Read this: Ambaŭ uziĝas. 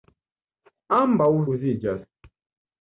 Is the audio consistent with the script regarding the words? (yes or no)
yes